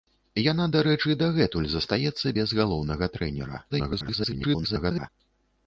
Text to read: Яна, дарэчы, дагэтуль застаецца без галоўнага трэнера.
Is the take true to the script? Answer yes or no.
no